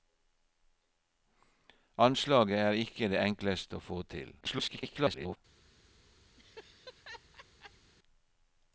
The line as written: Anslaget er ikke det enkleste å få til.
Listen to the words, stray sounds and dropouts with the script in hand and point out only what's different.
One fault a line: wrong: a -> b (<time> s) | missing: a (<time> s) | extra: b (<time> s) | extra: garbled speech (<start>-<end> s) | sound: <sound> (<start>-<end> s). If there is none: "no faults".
extra: garbled speech (4.4-5.4 s)
sound: laugh (6.4-7.9 s)